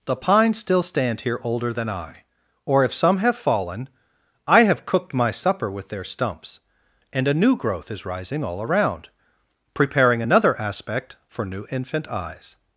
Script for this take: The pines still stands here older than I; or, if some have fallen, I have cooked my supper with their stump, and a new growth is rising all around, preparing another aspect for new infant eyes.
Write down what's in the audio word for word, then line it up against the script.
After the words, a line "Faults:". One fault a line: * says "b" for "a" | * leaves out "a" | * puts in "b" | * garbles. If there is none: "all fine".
The pines still stand here older than I; or, if some have fallen, I have cooked my supper with their stumps, and a new growth is rising all around, preparing another aspect for new infant eyes.
Faults:
* says "stand" for "stands"
* says "stumps" for "stump"